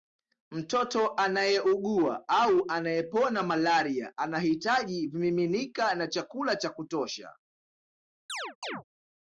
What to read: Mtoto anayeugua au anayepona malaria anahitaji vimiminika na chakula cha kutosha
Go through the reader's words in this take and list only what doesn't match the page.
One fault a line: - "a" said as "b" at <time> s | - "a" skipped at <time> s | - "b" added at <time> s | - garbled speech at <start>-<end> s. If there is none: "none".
none